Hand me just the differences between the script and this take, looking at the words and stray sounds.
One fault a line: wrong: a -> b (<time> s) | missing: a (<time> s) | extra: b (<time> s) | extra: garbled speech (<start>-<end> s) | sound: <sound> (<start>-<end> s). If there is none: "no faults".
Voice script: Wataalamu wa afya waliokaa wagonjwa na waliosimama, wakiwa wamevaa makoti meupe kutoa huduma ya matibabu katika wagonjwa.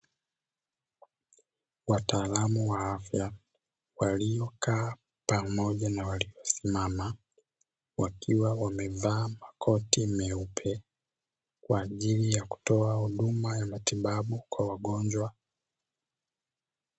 wrong: wagonjwa -> pamoja (5.2 s)
extra: kwa ajili ya (11.6 s)
wrong: katika -> kwa (14.5 s)